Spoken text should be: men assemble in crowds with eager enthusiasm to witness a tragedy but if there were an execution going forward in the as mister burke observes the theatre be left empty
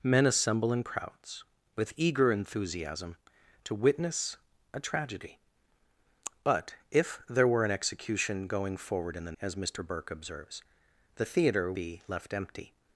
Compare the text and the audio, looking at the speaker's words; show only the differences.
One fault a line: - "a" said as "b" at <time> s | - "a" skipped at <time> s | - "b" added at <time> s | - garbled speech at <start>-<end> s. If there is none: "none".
none